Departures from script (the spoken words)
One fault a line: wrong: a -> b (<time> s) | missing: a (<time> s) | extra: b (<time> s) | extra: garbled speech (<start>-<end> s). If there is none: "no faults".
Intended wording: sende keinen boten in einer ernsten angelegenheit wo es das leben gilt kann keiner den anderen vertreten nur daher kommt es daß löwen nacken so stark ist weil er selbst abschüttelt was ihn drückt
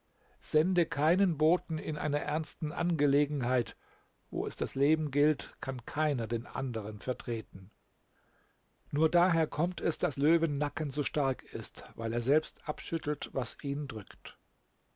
no faults